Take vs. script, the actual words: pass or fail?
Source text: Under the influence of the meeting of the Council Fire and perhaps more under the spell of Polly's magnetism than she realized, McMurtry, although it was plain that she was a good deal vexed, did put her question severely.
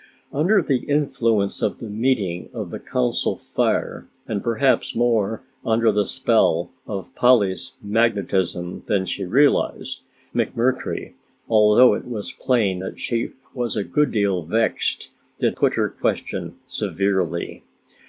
pass